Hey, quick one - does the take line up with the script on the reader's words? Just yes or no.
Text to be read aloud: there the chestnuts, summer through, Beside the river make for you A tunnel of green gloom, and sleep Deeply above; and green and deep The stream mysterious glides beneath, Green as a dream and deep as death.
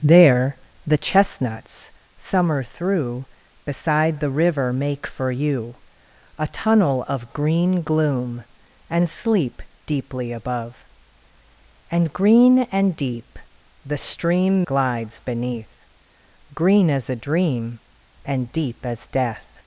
no